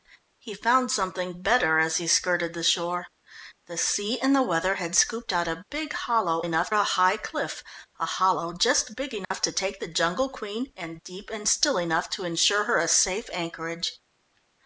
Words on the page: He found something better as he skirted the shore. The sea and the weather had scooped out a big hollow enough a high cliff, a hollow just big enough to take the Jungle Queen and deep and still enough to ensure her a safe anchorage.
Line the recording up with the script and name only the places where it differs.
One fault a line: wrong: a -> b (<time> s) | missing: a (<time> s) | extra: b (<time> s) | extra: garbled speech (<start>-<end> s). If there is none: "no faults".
no faults